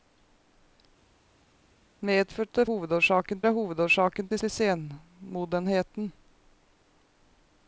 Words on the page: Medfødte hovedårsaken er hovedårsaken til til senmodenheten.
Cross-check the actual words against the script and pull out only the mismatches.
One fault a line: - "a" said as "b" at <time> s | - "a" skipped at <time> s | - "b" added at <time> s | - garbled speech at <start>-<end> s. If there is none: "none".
none